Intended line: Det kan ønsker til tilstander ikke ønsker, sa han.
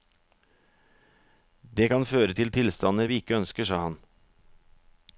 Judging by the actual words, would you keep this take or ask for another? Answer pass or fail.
fail